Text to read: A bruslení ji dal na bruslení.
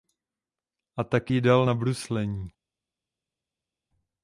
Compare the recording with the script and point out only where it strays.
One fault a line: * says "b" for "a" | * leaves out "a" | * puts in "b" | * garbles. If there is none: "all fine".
* says "tak" for "bruslení"